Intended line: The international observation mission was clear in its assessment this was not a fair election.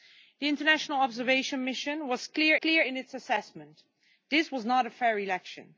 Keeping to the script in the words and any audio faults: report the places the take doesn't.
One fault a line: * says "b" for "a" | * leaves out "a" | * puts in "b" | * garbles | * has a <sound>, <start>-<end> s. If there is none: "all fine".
* puts in "clear"